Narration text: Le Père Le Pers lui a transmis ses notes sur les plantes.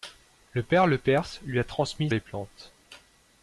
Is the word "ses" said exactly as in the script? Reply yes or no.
no